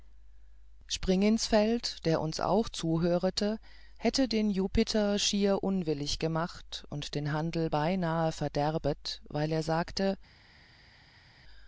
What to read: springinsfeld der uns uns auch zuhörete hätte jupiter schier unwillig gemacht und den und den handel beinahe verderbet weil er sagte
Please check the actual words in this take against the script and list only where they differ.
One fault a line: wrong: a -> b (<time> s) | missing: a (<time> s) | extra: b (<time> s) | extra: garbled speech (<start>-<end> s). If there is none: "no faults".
missing: uns (2.4 s)
extra: den (4.3 s)
missing: und den (7.3 s)